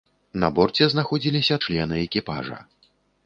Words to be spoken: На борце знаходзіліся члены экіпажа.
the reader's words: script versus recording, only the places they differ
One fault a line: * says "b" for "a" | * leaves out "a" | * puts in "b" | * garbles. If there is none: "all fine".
all fine